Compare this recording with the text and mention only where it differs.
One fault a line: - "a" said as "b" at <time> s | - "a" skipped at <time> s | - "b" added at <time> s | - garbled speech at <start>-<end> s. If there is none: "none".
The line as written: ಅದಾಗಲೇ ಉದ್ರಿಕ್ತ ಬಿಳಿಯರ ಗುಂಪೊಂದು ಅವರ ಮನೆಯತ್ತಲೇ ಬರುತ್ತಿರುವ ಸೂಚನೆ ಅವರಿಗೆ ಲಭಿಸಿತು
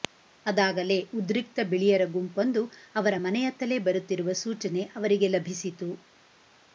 none